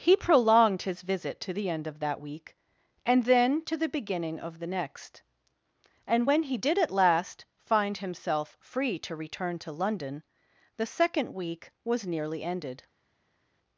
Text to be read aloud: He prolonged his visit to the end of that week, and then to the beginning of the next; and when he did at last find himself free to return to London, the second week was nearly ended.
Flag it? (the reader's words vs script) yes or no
no